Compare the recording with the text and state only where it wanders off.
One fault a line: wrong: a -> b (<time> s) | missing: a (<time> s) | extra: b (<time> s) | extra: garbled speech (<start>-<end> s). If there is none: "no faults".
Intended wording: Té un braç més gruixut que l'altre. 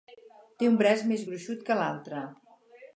no faults